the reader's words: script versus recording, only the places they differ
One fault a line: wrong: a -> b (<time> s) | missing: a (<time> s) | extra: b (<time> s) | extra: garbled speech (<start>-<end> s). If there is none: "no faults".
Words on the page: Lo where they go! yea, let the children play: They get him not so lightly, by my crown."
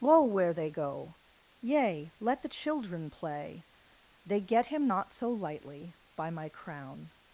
no faults